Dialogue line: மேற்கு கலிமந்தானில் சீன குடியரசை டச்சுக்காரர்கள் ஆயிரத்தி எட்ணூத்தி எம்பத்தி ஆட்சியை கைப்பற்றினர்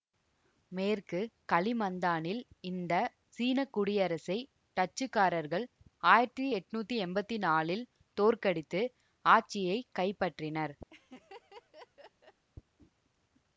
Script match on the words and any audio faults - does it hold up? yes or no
no